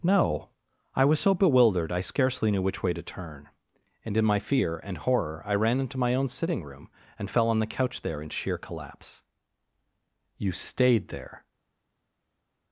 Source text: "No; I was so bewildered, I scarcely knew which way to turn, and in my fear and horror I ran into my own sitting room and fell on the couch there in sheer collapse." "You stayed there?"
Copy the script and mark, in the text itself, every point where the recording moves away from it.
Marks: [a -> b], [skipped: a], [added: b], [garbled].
"No; I was so bewildered, I scarcely knew which way to turn, and in my fear and horror I ran into my own sitting room and fell on the couch there in sheer collapse." "You stayed there?"